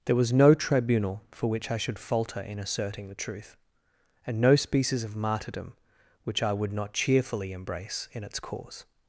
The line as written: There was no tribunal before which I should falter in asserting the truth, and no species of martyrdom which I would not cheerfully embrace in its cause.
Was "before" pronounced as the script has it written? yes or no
no